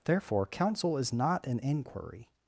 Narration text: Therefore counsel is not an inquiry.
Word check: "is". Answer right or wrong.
right